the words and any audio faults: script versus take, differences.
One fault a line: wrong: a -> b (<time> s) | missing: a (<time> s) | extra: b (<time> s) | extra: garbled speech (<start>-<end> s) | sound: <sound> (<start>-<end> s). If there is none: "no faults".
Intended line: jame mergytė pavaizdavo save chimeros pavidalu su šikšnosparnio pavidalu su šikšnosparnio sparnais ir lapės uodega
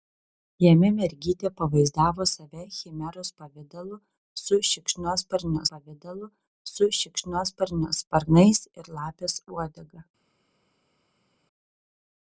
no faults